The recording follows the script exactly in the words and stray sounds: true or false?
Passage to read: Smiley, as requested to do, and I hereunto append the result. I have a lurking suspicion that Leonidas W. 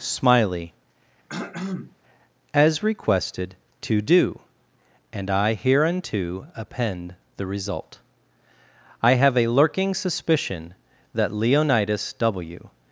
false